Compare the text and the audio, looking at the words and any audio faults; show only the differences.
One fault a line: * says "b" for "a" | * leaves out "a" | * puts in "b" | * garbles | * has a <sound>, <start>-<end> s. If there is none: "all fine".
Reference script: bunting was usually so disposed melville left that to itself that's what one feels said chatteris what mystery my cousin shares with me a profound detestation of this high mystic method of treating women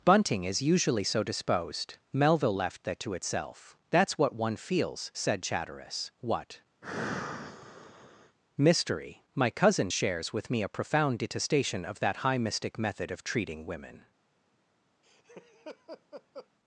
* says "is" for "was"
* has a sigh, 6.8-8.4 s
* says "that" for "this"
* has a laugh, 15.0-16.5 s